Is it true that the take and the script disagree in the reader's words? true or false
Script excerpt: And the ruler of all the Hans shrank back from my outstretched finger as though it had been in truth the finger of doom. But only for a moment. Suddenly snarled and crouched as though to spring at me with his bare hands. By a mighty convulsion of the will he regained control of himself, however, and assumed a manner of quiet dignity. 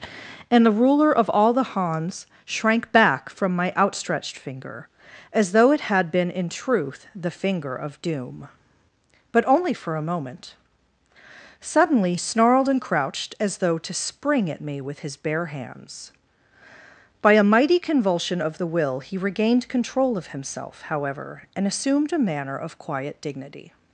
false